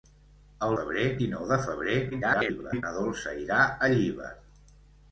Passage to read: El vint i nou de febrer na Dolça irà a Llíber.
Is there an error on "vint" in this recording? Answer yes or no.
yes